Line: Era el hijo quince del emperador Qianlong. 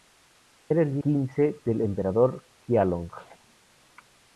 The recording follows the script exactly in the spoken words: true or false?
false